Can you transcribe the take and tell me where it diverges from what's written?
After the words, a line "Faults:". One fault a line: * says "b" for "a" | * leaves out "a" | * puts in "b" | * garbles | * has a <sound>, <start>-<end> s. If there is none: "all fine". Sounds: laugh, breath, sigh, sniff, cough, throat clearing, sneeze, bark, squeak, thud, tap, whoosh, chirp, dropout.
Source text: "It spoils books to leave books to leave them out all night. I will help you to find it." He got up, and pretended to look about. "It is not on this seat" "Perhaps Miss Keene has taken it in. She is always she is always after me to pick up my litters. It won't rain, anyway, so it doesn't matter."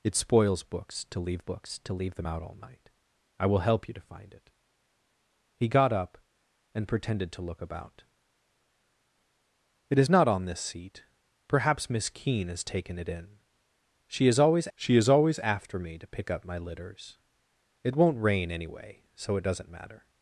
"It spoils books to leave books to leave them out all night. I will help you to find it." He got up, and pretended to look about. "It is not on this seat" "Perhaps Miss Keene has taken it in. She is always she is always after me to pick up my litters. It won't rain, anyway, so it doesn't matter."
Faults:
all fine